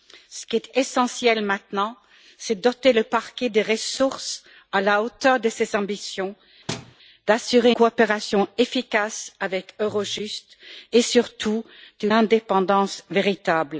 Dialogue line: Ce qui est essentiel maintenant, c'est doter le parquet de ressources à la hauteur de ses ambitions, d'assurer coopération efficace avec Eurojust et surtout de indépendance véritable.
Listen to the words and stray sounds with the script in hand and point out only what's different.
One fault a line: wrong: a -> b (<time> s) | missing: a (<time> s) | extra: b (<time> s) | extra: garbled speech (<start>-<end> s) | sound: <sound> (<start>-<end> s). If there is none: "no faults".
sound: thud (6.7-6.9 s)